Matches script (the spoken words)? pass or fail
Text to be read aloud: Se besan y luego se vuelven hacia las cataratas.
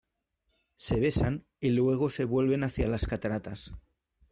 pass